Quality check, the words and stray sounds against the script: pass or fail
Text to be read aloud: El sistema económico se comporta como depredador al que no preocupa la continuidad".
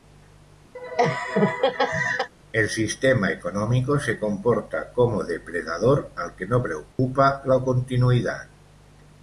fail